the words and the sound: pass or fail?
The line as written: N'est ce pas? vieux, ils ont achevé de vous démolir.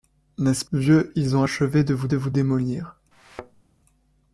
fail